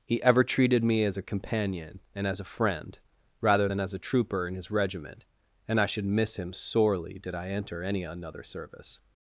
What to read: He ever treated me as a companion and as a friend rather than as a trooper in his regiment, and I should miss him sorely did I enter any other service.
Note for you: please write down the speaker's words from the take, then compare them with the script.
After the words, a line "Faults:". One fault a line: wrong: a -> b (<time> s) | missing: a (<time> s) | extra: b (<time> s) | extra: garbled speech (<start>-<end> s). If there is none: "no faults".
He ever treated me as a companion and as a friend rather than as a trooper in his regiment, and I should miss him sorely did I enter any another service.
Faults:
wrong: other -> another (8.0 s)